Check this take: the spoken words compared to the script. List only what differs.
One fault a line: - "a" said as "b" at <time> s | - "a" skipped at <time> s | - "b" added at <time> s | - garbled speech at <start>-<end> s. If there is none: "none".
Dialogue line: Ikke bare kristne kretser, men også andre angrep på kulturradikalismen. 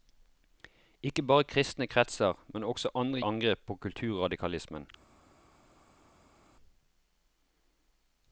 none